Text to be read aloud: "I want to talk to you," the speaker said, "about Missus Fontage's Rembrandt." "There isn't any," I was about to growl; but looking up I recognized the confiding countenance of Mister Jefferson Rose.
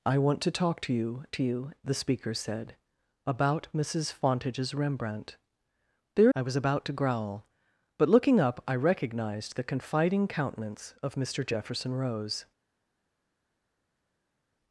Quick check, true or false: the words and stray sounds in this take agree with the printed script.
false